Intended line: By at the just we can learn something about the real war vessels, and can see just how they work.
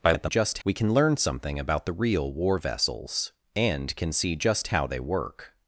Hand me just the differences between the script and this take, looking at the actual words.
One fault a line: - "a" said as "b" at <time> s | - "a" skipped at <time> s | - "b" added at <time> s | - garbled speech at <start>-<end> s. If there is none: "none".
none